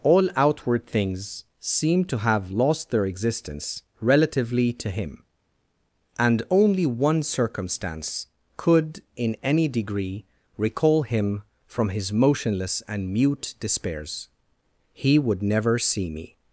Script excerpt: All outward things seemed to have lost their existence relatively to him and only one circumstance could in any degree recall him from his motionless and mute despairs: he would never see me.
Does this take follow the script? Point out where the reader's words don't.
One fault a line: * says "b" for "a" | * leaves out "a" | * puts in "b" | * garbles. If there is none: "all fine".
all fine